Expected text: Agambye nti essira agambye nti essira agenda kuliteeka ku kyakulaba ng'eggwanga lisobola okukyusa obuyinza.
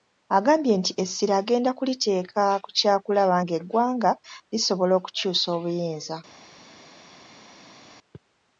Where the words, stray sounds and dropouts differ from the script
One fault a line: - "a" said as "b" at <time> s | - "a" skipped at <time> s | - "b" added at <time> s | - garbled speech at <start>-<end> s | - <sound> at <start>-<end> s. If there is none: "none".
- "agambye nti essira" skipped at 1.3 s